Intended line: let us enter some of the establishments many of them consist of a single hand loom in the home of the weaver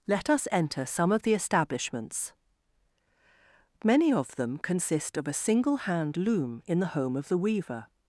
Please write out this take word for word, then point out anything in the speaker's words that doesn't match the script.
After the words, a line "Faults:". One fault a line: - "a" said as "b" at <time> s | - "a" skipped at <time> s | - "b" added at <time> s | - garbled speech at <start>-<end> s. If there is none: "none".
let us enter some of the establishments many of them consist of a single hand loom in the home of the weaver
Faults:
none